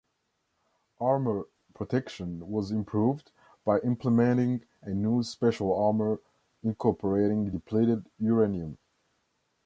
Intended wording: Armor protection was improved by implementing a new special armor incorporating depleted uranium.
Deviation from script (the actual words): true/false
false